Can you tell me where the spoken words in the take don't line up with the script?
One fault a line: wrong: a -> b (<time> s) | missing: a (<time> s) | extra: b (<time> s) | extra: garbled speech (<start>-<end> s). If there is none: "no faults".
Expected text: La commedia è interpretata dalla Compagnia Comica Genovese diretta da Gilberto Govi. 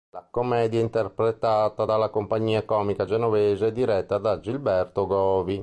no faults